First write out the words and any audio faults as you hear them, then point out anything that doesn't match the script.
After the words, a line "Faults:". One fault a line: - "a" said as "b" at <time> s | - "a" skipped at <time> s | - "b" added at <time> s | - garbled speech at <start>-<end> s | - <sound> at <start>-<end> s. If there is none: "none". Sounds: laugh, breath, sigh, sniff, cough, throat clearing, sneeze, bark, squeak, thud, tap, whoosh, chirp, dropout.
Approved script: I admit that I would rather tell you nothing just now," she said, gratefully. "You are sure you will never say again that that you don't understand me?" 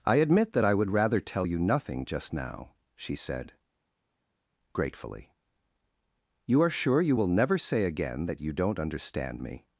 I admit that I would rather tell you nothing just now," she said, gratefully. "You are sure you will never say again that you don't understand me?"
Faults:
- "that" skipped at 8.4 s